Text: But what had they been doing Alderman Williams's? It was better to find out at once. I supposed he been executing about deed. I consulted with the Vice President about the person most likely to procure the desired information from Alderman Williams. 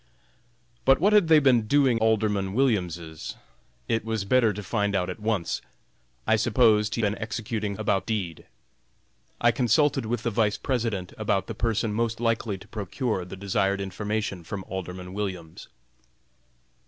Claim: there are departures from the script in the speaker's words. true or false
false